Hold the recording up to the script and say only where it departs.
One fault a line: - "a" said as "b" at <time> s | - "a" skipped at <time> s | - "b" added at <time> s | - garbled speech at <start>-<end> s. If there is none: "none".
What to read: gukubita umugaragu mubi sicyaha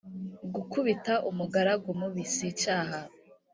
none